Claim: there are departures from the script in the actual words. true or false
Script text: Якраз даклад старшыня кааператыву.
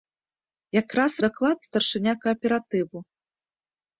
false